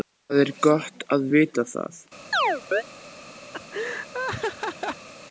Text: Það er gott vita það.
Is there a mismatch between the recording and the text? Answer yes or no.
yes